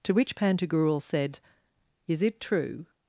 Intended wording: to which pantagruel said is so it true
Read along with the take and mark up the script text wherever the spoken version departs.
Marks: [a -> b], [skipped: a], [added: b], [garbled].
to which pantagruel said is [skipped: so] it true